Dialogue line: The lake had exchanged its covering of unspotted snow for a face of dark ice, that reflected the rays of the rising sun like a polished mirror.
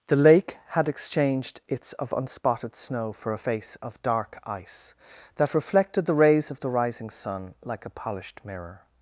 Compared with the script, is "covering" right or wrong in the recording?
wrong